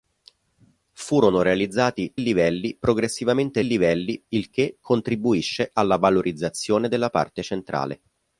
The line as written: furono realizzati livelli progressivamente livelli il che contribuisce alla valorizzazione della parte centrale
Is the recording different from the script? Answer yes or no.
no